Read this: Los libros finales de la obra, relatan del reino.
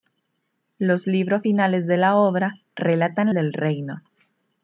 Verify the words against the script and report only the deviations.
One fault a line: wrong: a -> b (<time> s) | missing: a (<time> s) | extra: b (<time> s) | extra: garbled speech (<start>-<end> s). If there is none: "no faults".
no faults